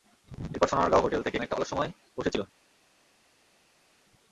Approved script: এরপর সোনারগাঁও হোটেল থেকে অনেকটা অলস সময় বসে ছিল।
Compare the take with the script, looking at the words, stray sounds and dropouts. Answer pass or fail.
pass